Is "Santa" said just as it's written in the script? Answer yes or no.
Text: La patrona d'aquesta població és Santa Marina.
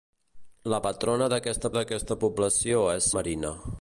no